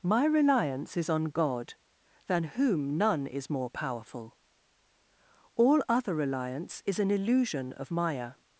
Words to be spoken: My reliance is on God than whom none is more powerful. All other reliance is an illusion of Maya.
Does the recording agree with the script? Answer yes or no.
yes